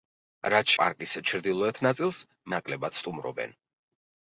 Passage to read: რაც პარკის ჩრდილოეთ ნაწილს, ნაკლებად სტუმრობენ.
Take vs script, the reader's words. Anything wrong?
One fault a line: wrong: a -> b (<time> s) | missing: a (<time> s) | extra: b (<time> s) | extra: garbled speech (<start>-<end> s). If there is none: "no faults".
no faults